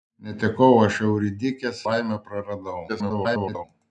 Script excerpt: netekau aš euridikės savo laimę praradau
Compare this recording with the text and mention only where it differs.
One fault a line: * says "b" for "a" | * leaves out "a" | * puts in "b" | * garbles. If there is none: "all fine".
* leaves out "savo"
* garbles